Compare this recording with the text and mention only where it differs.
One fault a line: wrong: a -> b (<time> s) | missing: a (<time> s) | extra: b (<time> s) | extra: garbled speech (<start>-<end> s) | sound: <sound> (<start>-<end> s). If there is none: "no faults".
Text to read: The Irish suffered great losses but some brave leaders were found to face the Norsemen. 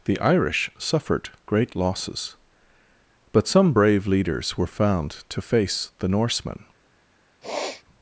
sound: sniff (7.4-7.8 s)